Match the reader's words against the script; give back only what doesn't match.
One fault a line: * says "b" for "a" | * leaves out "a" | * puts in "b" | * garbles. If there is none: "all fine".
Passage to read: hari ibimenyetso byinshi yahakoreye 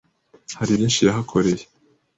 * leaves out "ibimenyetso"